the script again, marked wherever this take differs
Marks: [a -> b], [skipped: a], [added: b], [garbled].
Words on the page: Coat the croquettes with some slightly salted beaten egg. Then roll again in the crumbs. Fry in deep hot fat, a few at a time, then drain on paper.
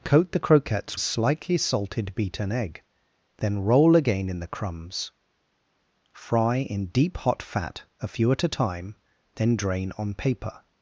Coat the croquettes [skipped: with some] slightly salted beaten egg. Then roll again in the crumbs. Fry in deep hot fat, a few at a time, then drain on paper.